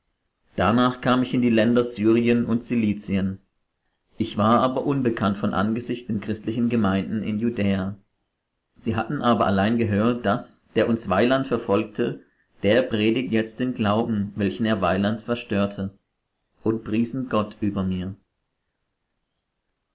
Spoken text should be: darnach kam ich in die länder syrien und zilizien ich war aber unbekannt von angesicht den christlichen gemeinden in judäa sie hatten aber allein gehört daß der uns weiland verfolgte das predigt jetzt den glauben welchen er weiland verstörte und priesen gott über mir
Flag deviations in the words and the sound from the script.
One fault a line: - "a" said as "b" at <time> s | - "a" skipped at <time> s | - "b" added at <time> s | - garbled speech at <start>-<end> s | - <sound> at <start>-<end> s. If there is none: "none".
- "das" said as "der" at 12.6 s